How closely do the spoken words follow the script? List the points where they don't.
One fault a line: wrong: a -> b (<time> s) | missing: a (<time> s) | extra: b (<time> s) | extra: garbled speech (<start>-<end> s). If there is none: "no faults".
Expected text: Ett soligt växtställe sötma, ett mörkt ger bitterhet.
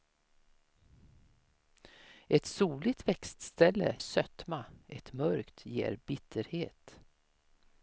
no faults